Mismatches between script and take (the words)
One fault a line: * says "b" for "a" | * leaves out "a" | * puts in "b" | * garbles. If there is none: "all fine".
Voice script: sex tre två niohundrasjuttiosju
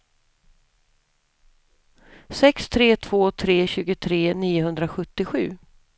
* puts in "tre tjugotre"